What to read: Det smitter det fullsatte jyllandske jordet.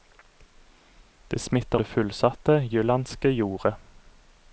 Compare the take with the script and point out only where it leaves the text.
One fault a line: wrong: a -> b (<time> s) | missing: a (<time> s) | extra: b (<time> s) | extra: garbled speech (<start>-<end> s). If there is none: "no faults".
no faults